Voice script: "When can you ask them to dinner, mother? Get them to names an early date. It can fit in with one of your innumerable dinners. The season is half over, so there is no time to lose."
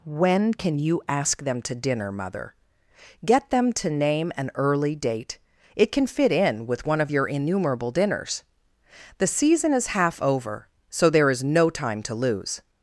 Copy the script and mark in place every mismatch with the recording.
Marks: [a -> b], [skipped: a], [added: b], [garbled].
"When can you ask them to dinner, mother? Get them to [names -> name] an early date. It can fit in with one of your innumerable dinners. The season is half over, so there is no time to lose."